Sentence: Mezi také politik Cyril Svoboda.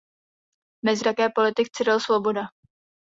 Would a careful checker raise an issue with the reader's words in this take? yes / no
no